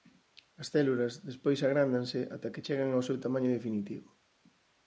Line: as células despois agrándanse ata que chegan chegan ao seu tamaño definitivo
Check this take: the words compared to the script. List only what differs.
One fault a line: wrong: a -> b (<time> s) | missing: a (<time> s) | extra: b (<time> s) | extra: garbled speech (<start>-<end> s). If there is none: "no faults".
missing: chegan (2.9 s)